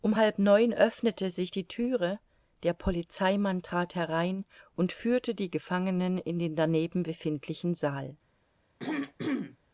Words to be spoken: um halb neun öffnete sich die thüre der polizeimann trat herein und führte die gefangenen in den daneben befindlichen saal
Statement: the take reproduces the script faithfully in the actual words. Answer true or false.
true